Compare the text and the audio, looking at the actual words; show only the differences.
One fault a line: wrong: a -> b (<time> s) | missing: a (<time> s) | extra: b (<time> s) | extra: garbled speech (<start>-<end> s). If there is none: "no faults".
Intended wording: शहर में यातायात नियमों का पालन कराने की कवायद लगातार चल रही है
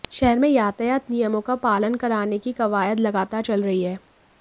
no faults